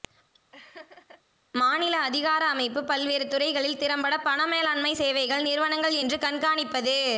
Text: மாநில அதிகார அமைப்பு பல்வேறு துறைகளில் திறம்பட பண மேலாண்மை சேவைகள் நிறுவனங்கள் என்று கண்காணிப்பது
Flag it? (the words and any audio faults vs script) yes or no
yes